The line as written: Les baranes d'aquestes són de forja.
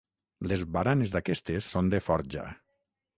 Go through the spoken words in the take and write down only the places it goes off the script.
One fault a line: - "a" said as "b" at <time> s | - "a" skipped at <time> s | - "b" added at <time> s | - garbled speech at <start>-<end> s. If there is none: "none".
none